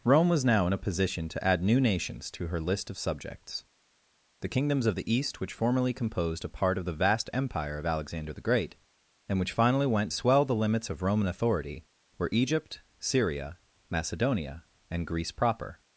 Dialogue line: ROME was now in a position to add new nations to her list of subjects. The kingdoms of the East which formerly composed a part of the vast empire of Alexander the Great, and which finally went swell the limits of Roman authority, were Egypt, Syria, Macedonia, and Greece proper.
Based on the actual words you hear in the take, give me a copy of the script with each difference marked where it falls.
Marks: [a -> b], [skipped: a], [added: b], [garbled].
ROME was now in a position to add new nations to her list of subjects. The kingdoms of the East which formerly composed a part of the vast empire of Alexander the Great, and which finally went swell the limits of Roman authority, were Egypt, Syria, Macedonia, and Greece proper.